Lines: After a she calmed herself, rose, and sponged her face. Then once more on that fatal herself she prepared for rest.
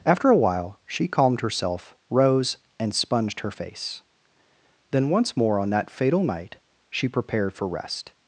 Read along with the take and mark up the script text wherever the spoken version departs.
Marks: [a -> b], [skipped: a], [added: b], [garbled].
After a [added: while] she calmed herself, rose, and sponged her face. Then once more on that fatal [herself -> night] she prepared for rest.